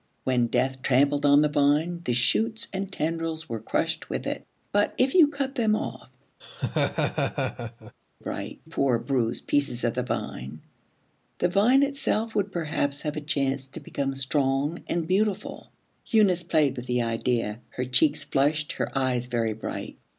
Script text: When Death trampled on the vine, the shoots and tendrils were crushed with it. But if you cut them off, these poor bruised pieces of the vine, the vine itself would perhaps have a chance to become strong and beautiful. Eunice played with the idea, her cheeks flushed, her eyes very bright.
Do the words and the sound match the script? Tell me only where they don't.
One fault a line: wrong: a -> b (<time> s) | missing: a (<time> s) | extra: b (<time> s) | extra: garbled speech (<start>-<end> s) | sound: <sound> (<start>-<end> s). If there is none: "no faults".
sound: laugh (6.4-7.9 s)
wrong: these -> bright (8.2 s)